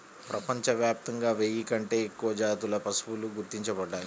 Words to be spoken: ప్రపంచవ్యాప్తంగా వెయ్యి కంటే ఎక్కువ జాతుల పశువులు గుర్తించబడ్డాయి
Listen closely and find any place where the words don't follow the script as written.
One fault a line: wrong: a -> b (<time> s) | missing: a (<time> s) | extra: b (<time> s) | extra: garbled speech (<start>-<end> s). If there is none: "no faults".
no faults